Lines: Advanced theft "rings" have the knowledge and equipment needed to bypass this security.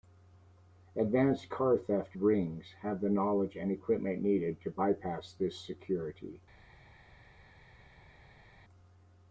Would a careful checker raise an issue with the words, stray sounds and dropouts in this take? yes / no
yes